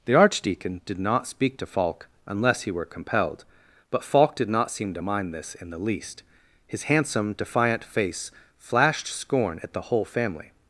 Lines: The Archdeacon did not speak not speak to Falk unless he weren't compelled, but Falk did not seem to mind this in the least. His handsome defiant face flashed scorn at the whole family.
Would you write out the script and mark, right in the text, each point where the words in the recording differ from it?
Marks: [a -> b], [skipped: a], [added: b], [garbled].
The Archdeacon did not speak [skipped: not speak] to Falk unless he [weren't -> were] compelled, but Falk did not seem to mind this in the least. His handsome defiant face flashed scorn at the whole family.